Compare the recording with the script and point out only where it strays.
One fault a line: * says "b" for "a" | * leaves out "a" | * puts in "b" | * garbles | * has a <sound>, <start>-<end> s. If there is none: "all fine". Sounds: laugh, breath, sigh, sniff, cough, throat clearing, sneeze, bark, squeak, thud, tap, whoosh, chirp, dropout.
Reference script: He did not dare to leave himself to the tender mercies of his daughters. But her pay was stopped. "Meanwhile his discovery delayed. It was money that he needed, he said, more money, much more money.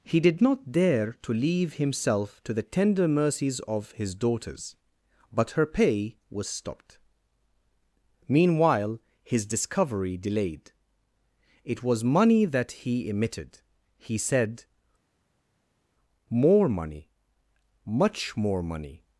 * says "emitted" for "needed"